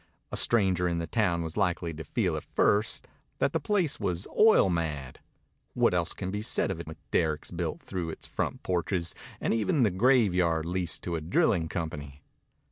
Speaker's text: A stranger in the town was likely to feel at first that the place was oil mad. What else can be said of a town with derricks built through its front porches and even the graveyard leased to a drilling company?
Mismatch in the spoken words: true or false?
true